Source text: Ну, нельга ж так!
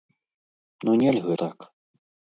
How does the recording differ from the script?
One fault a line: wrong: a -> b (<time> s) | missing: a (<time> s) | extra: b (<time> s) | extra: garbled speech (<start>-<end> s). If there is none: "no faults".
missing: ж (1.4 s)